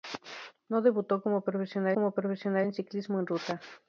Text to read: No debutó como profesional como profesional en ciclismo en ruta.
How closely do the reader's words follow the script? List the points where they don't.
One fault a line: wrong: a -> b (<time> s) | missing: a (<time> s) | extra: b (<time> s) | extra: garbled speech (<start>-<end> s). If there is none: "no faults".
no faults